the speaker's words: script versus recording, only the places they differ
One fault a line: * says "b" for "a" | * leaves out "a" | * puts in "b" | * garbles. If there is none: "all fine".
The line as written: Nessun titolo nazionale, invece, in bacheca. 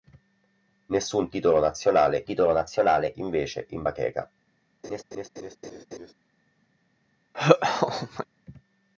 * puts in "titolo nazionale"